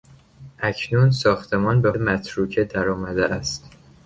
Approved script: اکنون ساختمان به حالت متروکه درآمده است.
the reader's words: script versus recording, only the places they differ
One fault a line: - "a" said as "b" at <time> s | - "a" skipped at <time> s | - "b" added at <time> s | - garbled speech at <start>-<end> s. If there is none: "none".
- "حالت" skipped at 1.9 s